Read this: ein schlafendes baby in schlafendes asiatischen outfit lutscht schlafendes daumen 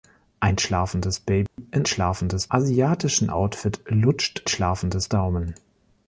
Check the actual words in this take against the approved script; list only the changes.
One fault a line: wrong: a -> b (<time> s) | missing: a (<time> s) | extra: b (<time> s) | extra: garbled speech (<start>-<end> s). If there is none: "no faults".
no faults